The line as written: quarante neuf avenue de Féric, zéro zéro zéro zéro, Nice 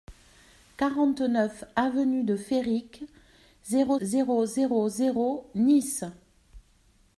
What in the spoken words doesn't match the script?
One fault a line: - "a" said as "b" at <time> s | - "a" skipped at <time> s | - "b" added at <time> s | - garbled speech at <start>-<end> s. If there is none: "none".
none